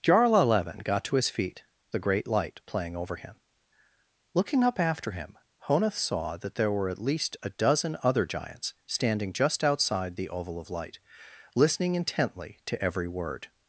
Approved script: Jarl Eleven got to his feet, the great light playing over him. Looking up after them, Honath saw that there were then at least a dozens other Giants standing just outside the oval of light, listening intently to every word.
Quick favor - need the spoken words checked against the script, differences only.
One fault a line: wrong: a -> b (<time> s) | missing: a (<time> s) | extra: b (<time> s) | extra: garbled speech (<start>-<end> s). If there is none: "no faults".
wrong: them -> him (5.1 s)
missing: then (6.9 s)
wrong: dozens -> dozen (7.5 s)